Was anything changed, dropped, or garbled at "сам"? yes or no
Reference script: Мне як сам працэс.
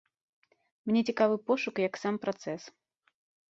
no